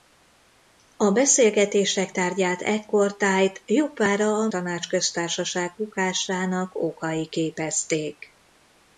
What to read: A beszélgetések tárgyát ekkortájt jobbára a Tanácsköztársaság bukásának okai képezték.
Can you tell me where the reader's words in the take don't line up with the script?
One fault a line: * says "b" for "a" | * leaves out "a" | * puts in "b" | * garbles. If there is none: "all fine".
all fine